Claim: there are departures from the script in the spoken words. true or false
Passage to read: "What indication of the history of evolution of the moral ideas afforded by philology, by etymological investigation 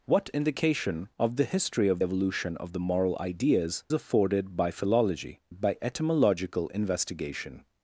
false